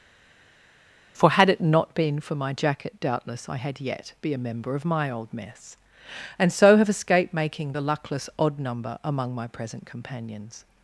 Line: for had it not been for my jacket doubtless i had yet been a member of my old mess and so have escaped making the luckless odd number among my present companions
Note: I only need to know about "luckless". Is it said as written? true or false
true